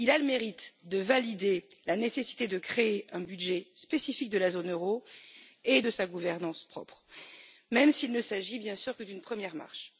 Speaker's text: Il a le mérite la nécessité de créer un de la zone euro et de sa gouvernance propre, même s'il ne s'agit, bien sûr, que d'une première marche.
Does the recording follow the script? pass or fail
fail